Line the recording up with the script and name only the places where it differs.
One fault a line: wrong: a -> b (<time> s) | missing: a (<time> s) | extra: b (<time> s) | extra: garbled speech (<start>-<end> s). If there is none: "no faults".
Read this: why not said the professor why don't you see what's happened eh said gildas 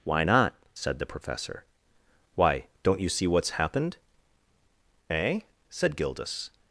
no faults